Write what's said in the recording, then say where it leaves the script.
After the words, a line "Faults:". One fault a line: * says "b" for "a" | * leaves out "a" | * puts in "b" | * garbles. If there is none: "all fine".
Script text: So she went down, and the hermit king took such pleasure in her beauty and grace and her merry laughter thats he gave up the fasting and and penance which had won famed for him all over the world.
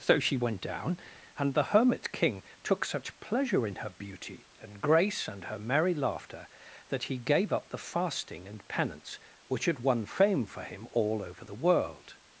So she went down, and the hermit king took such pleasure in her beauty and grace and her merry laughter that he gave up the fasting and penance which had won fame for him all over the world.
Faults:
* says "that" for "thats"
* leaves out "and"
* says "fame" for "famed"